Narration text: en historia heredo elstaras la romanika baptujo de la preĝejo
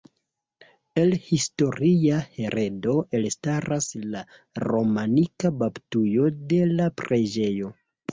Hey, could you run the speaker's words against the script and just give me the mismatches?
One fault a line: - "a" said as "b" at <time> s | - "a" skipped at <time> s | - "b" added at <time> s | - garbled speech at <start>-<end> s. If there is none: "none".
- "en" said as "el" at 1.0 s